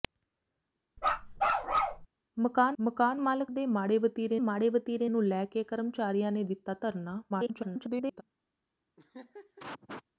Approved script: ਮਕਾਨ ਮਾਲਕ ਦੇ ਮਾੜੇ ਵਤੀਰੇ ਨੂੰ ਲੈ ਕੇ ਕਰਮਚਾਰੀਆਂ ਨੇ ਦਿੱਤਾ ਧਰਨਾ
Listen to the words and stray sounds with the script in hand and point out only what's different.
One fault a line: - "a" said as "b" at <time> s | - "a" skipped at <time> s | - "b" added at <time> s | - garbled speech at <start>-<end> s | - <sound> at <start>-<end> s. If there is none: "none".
- bark at 1.0-2.1 s
- "ਮਕਾਨ" added at 2.8 s
- "ਮਾੜੇ ਵਤੀਰੇ" added at 4.4 s
- garbled speech at 7.3-8.2 s
- laugh at 9.0-10.0 s